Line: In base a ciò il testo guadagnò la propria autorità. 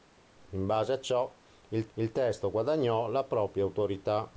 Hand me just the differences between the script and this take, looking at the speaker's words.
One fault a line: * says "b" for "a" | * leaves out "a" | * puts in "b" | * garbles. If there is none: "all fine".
* puts in "il"